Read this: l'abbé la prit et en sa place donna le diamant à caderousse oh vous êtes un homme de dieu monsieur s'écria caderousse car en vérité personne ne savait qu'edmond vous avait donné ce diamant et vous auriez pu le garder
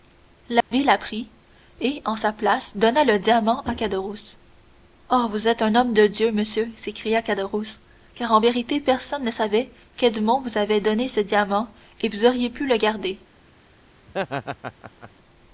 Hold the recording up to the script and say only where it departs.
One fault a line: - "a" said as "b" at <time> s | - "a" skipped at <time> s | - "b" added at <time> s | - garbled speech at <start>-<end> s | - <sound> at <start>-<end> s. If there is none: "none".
- dropout at 0.6-0.7 s
- laugh at 14.1-15.1 s